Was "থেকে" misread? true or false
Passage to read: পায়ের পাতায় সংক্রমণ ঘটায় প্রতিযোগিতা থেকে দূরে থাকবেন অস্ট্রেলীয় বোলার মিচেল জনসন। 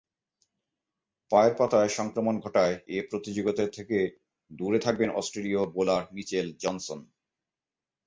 false